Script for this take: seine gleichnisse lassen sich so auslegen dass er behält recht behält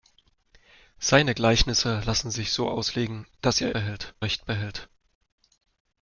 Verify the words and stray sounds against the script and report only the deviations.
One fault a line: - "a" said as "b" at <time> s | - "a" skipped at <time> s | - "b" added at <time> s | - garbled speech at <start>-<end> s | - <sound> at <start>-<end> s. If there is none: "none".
none